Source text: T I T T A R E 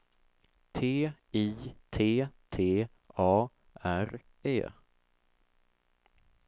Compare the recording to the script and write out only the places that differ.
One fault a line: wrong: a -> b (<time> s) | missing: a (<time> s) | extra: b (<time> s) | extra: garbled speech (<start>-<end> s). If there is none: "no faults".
no faults